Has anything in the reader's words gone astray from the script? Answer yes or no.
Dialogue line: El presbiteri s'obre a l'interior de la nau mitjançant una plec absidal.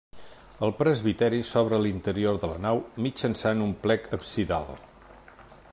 yes